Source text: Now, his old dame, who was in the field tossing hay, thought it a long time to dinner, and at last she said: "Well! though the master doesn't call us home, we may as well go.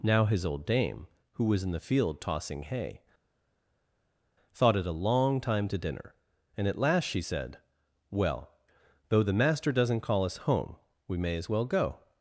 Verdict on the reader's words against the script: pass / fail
pass